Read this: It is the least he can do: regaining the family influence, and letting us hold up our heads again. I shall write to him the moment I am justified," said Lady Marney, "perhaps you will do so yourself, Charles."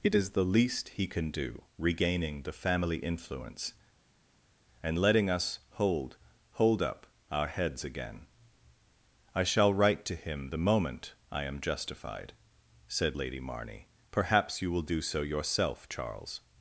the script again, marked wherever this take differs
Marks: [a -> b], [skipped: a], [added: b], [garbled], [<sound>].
It is the least he can do: regaining the family influence, and letting us hold [added: hold] up our heads again. I shall write to him the moment I am justified," said Lady Marney, "perhaps you will do so yourself, Charles."